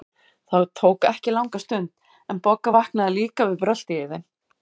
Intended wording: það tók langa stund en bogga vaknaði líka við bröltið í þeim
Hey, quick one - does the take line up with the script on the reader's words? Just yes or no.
no